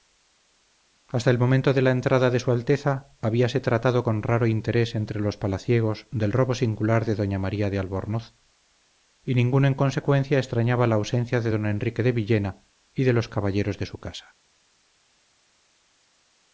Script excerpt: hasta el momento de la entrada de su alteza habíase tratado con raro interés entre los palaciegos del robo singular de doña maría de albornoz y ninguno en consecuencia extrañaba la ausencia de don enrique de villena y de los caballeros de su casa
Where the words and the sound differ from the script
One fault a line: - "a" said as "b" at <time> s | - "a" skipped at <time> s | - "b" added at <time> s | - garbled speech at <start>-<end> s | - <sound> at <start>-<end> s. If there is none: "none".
none